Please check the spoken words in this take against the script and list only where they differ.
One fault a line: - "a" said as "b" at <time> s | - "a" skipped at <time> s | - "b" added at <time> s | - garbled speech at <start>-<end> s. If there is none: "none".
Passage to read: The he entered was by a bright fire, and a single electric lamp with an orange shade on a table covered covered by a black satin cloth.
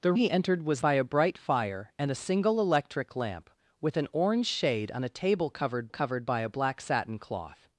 none